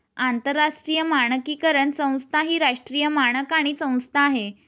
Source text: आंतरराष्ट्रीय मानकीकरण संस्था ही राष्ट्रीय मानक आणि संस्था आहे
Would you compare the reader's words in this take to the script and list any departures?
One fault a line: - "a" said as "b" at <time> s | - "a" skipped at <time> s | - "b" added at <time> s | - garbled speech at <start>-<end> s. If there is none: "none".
none